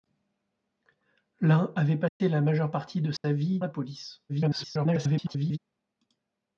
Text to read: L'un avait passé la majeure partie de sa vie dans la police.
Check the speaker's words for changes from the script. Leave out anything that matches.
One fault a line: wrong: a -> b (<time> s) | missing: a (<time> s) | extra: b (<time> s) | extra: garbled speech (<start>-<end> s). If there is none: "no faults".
missing: dans (3.6 s)
extra: garbled speech (4.3-5.6 s)